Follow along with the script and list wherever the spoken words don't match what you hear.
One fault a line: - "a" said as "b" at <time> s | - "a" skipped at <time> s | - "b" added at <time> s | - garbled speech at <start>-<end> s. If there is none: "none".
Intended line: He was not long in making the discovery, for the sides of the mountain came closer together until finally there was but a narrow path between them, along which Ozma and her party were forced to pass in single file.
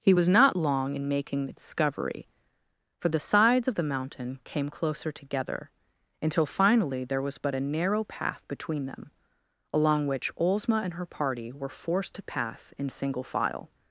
none